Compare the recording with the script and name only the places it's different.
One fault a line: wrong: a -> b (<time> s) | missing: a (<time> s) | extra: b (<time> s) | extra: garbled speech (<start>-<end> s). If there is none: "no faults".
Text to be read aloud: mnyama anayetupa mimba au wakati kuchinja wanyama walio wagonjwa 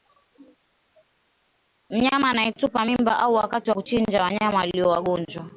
no faults